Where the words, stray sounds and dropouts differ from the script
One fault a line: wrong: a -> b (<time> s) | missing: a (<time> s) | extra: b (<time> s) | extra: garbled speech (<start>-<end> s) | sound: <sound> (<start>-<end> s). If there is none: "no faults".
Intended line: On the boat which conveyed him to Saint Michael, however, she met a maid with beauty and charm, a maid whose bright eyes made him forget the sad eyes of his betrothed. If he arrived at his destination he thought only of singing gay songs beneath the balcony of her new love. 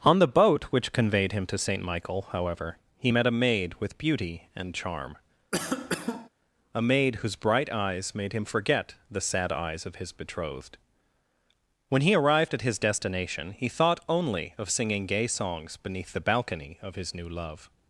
wrong: she -> he (3.0 s)
sound: cough (5.5-6.3 s)
wrong: If -> When (11.9 s)
wrong: her -> his (16.9 s)